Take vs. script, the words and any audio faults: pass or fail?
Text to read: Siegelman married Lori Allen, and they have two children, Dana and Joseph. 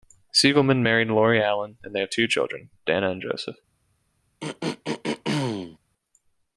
fail